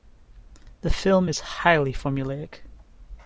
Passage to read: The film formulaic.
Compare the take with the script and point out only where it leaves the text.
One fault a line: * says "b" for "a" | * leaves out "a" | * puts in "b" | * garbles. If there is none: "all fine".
* puts in "is highly"